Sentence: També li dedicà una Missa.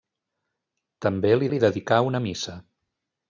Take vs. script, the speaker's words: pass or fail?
fail